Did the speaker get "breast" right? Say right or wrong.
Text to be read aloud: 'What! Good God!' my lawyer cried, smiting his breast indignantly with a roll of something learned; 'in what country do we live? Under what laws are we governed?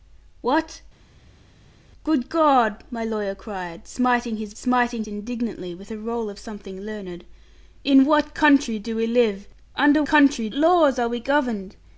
wrong